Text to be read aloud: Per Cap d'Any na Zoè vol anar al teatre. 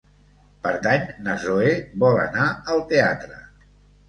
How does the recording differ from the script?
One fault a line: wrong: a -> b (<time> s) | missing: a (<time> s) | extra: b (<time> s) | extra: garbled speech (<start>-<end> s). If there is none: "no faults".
missing: Cap (0.7 s)